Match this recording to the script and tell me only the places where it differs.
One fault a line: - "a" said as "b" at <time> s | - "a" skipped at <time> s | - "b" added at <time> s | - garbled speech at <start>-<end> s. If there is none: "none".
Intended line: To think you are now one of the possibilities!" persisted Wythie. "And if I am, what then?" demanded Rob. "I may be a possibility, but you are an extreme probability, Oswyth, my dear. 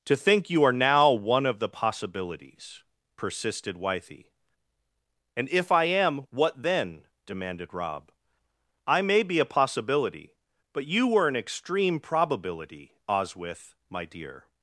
- "are" said as "were" at 11.1 s